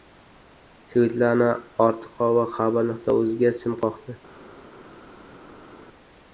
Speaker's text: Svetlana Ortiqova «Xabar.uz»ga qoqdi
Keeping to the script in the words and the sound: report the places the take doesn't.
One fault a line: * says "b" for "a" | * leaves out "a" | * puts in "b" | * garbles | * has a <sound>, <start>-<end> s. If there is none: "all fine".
* puts in "sim"